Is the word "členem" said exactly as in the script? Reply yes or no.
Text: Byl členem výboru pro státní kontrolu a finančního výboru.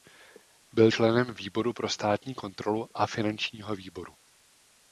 yes